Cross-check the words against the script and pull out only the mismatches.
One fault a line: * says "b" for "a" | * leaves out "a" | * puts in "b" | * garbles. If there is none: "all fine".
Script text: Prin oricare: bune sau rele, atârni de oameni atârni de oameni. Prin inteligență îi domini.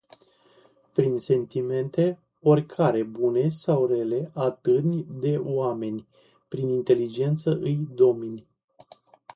* puts in "sentimente"
* leaves out "atârni de oameni"